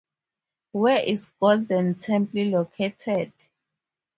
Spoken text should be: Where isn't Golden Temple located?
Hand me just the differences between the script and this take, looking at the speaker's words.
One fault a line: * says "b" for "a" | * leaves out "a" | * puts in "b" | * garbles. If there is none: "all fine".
* says "is" for "isn't"